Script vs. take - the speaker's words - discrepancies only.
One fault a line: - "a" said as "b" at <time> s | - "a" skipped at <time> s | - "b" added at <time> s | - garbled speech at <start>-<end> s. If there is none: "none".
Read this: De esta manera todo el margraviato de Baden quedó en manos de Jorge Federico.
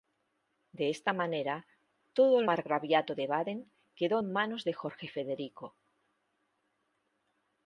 none